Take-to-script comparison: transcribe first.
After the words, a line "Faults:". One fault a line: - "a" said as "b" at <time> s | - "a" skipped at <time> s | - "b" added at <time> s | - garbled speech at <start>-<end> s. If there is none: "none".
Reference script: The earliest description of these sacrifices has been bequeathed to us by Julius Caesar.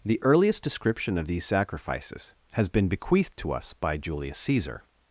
The earliest description of these sacrifices has been bequeathed to us by Julius Caesar.
Faults:
none